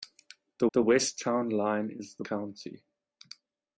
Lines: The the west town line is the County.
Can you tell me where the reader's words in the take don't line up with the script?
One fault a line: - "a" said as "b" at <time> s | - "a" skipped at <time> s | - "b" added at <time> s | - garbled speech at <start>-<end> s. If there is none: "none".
none